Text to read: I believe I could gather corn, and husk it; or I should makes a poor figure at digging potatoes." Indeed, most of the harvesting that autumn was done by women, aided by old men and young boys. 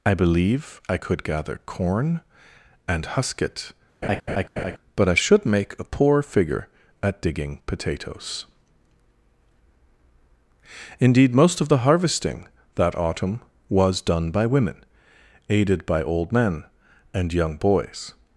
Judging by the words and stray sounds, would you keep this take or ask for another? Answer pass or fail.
fail